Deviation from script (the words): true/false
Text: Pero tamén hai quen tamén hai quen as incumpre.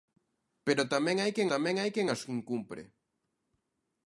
false